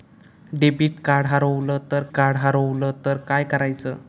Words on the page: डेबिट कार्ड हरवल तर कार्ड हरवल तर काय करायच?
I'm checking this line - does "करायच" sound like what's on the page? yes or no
yes